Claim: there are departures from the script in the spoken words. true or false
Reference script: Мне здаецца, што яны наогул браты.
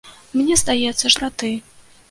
true